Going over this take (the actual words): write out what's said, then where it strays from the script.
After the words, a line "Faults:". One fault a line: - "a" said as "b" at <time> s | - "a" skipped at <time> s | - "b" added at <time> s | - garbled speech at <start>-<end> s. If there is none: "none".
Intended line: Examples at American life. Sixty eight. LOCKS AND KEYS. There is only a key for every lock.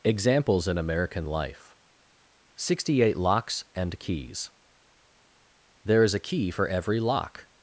Examples in American life. Sixty eight. LOCKS AND KEYS. There is a key for every lock.
Faults:
- "at" said as "in" at 0.7 s
- "only" skipped at 6.1 s